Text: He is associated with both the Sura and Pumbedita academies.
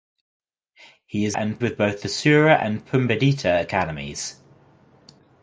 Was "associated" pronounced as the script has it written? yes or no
no